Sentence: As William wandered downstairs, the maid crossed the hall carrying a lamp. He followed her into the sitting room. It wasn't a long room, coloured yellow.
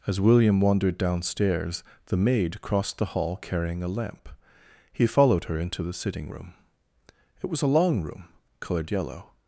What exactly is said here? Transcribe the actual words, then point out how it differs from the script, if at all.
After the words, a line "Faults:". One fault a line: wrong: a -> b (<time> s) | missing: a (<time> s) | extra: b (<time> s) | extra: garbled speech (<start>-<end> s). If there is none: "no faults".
As William wandered downstairs, the maid crossed the hall carrying a lamp. He followed her into the sitting room. It was a long room, coloured yellow.
Faults:
wrong: wasn't -> was (7.5 s)